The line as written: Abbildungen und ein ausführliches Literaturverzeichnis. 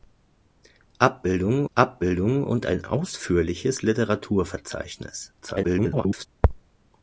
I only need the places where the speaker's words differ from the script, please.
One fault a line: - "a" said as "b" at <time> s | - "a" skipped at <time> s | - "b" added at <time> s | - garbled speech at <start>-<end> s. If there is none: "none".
- "abbildungen" added at 1.7 s
- garbled speech at 5.4-6.3 s